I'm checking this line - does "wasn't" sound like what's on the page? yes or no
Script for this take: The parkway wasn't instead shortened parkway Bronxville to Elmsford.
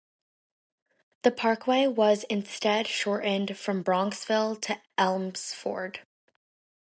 no